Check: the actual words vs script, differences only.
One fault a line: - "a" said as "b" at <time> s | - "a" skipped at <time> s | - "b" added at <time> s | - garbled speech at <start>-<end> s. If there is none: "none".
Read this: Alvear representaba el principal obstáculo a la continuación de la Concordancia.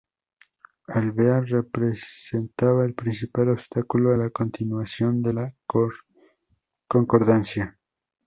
none